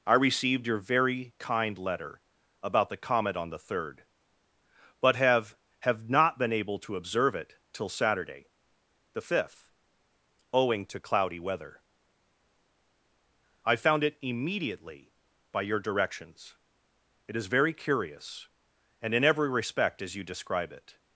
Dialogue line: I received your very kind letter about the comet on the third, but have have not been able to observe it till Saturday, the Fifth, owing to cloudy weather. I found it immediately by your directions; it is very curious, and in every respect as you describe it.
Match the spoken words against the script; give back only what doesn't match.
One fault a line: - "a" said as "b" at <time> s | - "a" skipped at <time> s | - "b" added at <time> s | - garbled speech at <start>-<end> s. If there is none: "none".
none